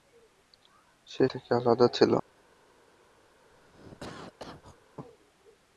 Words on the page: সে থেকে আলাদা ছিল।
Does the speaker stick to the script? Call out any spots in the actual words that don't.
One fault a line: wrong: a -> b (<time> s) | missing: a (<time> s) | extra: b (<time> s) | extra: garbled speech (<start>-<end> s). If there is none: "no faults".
no faults